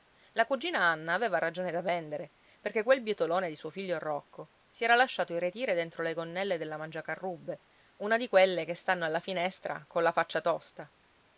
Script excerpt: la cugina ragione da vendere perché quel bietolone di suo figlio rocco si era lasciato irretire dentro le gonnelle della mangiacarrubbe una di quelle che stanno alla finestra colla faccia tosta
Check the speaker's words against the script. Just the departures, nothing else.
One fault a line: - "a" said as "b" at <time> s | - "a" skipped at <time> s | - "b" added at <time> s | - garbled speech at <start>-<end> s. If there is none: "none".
- "anna aveva" added at 0.8 s